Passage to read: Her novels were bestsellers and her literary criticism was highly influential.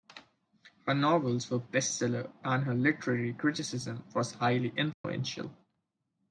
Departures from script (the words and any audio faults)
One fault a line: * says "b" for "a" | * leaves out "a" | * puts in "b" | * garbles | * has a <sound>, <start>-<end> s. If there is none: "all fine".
* has a dropout, 4.9-5.0 s